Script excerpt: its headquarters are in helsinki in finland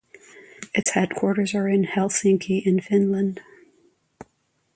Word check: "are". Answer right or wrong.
right